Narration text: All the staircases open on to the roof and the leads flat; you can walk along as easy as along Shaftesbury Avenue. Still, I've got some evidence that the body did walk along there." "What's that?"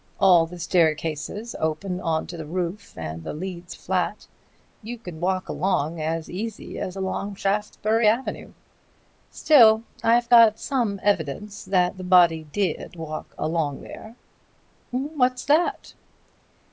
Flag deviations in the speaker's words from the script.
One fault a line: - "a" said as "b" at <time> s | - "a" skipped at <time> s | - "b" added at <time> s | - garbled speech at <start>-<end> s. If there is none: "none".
none